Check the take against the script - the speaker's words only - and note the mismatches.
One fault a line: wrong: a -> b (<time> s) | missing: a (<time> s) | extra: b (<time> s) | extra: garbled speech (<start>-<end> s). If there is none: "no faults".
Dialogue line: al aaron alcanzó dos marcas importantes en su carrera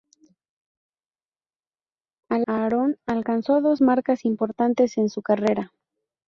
no faults